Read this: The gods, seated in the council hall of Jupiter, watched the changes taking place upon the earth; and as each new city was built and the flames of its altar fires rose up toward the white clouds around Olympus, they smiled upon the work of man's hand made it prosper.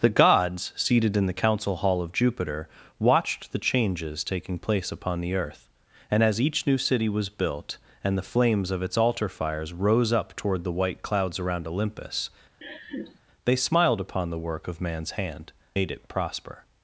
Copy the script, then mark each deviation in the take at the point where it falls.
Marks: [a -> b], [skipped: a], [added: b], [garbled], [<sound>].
The gods, seated in the council hall of Jupiter, watched the changes taking place upon the earth; and as each new city was built and the flames of its altar fires rose up toward the white clouds around Olympus, [laugh] they smiled upon the work of man's hand made it prosper.